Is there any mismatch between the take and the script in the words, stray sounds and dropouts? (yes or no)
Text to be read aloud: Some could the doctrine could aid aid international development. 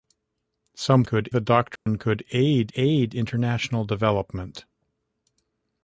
yes